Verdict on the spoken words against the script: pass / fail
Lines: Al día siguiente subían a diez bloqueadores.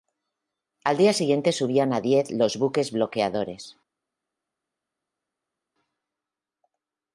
fail